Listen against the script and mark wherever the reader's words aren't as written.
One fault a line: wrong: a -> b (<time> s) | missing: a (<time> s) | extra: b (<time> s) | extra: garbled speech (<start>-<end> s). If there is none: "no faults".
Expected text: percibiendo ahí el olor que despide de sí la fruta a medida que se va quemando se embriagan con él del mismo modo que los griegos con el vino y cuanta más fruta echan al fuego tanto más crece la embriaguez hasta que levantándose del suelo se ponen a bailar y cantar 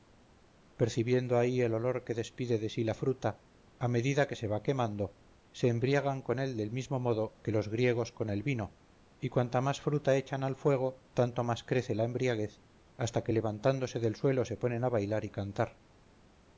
no faults